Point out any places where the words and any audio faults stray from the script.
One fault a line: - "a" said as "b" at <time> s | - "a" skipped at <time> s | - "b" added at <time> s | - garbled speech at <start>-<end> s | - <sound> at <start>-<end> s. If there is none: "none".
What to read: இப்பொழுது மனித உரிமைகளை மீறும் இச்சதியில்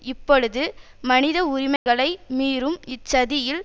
- dropout at 1.8-1.9 s